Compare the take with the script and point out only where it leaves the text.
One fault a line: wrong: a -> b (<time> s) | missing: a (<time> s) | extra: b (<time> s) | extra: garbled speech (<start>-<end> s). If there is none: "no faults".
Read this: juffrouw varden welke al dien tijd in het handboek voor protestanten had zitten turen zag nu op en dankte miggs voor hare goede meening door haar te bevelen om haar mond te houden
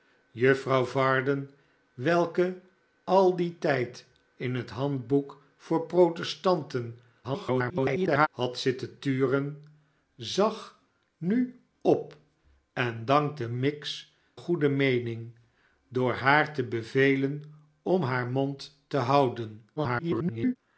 extra: garbled speech (7.2-8.3 s)
missing: voor hare (14.1 s)
extra: garbled speech (19.8-20.6 s)